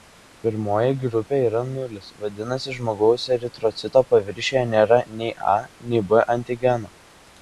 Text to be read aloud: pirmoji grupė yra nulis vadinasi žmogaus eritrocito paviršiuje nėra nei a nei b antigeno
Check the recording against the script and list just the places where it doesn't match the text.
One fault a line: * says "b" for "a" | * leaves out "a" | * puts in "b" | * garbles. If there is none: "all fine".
all fine